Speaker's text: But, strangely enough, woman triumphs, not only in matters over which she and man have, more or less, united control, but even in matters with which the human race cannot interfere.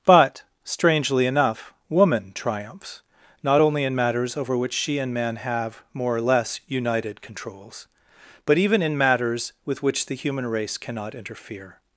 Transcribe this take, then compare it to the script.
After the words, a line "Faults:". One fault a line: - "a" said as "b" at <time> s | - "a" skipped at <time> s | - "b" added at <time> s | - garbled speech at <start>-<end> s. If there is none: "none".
But, strangely enough, woman triumphs, not only in matters over which she and man have, more or less, united controls, but even in matters with which the human race cannot interfere.
Faults:
- "control" said as "controls" at 7.2 s